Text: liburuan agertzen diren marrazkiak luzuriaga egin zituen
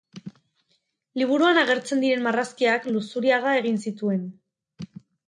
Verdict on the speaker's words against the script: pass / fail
pass